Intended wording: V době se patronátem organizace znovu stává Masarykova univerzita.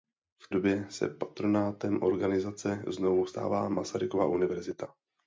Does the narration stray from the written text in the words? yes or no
no